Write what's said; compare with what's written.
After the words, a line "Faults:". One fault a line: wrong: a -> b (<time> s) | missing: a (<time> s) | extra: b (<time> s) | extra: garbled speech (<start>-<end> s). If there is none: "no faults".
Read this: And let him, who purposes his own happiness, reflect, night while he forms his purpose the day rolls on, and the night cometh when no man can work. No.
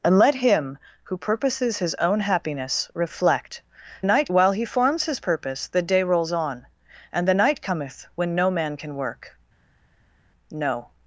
And let him, who purposes his own happiness, reflect, night while he forms his purpose the day rolls on, and the night cometh when no man can work. No.
Faults:
no faults